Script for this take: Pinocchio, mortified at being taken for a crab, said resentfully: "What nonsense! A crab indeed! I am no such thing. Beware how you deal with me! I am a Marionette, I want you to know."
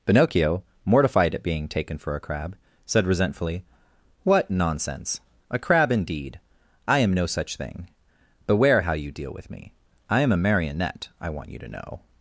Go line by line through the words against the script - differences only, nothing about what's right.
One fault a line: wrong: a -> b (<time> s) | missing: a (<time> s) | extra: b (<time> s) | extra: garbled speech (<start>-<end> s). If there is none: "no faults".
no faults